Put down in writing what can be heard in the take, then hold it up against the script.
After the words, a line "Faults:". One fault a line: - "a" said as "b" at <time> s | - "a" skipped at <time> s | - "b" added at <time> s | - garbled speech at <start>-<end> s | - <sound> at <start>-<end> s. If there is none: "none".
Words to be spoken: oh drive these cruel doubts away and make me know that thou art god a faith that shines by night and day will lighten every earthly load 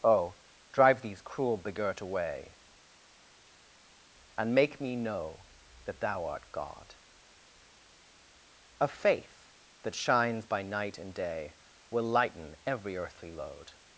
oh drive these cruel begirt away and make me know that thou art god a faith that shines by night and day will lighten every earthly load
Faults:
- "doubts" said as "begirt" at 1.6 s